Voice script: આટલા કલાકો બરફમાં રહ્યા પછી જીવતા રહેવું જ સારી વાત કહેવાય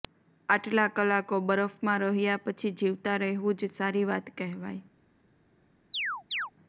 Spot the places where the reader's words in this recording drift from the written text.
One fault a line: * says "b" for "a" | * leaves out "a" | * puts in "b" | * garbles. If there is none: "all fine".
all fine